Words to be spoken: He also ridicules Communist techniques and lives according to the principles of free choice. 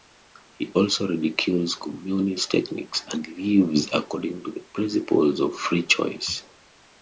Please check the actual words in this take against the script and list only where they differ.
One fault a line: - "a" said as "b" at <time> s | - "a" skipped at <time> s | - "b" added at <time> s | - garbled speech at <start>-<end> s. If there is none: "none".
none